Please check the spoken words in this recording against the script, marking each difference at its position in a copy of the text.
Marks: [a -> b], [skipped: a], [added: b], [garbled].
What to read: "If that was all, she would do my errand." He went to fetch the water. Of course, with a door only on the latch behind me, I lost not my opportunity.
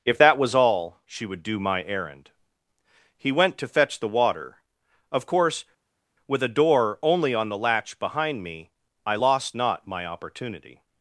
"If that was all, she would do my errand." He went to fetch the water. Of course, with a door only on the latch behind me, I lost not my opportunity.